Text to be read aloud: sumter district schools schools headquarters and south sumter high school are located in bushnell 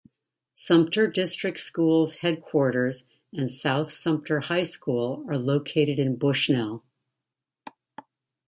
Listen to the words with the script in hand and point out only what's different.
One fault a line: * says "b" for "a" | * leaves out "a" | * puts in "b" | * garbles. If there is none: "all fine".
* leaves out "schools"